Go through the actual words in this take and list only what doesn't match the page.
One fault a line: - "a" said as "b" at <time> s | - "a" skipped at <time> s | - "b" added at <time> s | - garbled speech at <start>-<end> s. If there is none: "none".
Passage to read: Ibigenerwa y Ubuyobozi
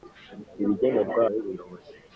none